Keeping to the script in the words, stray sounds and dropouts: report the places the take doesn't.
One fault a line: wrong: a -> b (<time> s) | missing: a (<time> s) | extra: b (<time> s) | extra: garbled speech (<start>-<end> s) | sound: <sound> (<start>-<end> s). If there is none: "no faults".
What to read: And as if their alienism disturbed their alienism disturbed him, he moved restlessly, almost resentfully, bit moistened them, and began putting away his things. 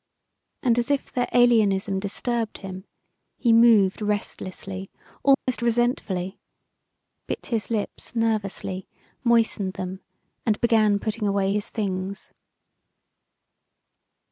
missing: their alienism disturbed (2.6 s)
sound: dropout (5.3-5.5 s)
extra: his lips nervously (7.5 s)